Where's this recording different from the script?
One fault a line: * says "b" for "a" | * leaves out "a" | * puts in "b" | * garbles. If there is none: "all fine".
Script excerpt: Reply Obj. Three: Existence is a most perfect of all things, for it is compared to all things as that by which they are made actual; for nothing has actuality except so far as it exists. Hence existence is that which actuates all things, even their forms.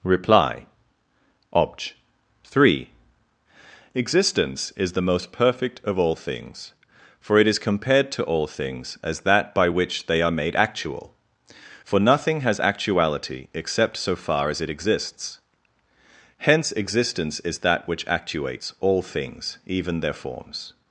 * says "the" for "a"